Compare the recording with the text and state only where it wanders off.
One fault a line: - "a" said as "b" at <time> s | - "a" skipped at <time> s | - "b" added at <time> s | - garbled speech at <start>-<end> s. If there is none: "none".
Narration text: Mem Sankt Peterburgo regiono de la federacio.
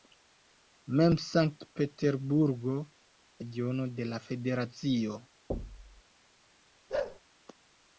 none